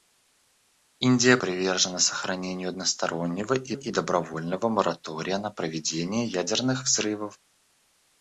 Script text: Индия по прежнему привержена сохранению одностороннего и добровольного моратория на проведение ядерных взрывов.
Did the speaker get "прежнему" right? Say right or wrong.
wrong